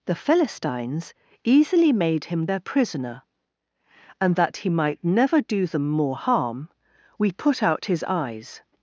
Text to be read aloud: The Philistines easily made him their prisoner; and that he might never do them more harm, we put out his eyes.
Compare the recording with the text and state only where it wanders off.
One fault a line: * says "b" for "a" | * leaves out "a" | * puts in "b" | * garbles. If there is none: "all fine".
all fine